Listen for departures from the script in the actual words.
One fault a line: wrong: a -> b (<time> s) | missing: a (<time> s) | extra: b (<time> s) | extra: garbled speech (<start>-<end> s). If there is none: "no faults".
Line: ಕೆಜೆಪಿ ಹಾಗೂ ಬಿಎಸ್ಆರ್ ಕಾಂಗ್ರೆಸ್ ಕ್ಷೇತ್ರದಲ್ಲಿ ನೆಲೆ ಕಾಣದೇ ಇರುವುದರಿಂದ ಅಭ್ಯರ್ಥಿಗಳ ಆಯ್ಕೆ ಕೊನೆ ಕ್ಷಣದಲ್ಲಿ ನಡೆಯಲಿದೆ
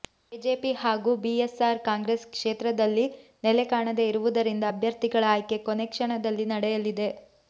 no faults